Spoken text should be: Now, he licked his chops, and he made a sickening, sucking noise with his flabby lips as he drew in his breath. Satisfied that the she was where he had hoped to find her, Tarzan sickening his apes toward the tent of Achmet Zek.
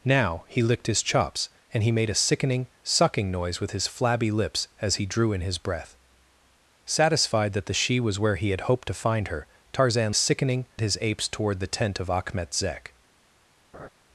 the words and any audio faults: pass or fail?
fail